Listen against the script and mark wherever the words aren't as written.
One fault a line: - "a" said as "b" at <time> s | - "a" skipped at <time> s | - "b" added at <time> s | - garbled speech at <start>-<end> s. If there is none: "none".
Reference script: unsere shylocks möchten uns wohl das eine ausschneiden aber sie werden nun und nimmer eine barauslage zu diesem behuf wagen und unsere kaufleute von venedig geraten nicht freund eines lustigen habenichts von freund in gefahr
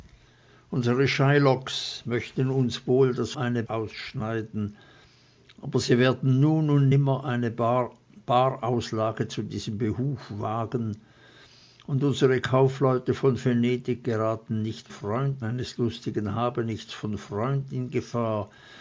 none